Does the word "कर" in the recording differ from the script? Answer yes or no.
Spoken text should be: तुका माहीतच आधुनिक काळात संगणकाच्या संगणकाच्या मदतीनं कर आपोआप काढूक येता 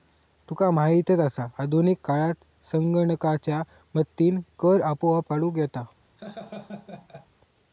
no